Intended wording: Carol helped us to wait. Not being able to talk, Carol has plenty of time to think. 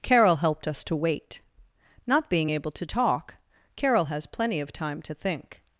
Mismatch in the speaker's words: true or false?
false